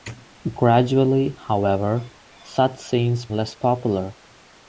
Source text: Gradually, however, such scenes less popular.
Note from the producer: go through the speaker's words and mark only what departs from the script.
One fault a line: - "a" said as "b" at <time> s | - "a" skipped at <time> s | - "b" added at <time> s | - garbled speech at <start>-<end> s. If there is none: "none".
none